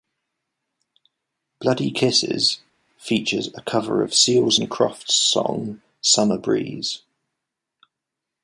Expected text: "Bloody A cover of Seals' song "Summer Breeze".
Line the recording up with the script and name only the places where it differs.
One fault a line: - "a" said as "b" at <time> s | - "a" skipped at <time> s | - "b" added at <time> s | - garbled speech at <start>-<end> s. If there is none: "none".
- "Kisses features" added at 1.9 s
- "and Crofts" added at 4.6 s